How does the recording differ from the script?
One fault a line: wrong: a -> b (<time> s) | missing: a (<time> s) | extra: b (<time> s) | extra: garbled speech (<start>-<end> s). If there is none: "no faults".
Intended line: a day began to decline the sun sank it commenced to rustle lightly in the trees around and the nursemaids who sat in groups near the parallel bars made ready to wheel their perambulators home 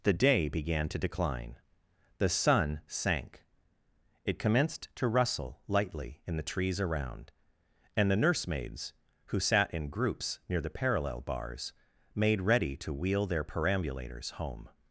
wrong: a -> the (0.0 s)